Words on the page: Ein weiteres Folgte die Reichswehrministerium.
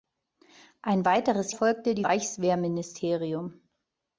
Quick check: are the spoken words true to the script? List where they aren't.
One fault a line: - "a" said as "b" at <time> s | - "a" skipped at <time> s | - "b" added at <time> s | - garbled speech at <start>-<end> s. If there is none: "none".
none